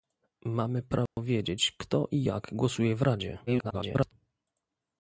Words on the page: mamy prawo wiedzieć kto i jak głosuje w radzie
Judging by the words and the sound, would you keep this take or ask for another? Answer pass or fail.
fail